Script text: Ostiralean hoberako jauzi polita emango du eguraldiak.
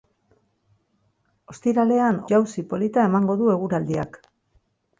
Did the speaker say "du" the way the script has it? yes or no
yes